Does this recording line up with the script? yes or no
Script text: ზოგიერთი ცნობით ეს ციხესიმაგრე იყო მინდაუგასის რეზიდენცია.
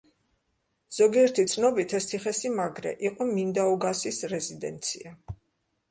yes